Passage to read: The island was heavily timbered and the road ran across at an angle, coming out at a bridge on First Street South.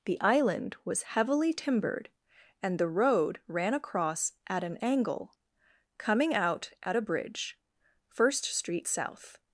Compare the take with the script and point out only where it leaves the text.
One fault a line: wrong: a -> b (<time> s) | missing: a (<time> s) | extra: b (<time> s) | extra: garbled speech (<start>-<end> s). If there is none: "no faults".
missing: on (7.6 s)